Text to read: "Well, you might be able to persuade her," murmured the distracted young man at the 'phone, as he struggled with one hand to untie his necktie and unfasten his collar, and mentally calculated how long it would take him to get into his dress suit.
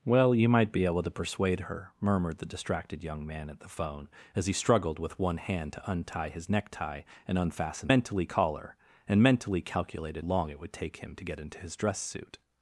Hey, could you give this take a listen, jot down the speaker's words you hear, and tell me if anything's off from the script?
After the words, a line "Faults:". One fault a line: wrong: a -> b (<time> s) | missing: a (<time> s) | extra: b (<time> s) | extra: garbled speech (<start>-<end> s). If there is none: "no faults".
"Well, you might be able to persuade her," murmured the distracted young man at the 'phone, as he struggled with one hand to untie his necktie and unfasten mentally collar, and mentally calculated long it would take him to get into his dress suit.
Faults:
wrong: his -> mentally (7.9 s)
missing: how (10.3 s)